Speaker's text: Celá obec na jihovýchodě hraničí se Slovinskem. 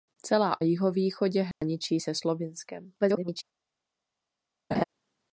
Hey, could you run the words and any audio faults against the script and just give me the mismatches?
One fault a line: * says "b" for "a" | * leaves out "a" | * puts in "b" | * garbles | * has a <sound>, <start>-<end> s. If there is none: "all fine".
* leaves out "obec na"
* has a dropout, 1.5-1.6 s
* garbles
* has a laugh, 4.7-4.8 s